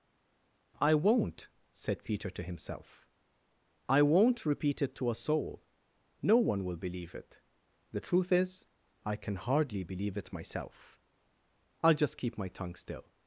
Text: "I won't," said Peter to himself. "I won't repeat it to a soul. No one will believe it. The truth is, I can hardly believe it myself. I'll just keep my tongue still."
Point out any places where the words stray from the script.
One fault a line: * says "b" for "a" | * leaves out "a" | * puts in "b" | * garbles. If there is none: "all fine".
all fine